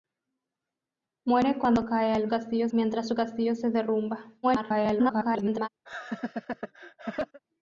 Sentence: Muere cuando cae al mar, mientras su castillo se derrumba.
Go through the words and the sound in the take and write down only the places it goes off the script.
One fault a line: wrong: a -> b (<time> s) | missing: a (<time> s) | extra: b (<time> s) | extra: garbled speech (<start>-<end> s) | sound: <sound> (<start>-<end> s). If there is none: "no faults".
wrong: mar -> castillo (2.3 s)
extra: garbled speech (4.4-5.7 s)
sound: laugh (5.8-7.4 s)